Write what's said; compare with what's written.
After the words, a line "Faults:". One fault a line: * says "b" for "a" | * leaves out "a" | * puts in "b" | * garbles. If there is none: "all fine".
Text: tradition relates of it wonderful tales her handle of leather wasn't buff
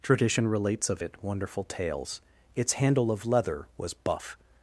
tradition relates of it wonderful tales its handle of leather was buff
Faults:
* says "its" for "her"
* says "was" for "wasn't"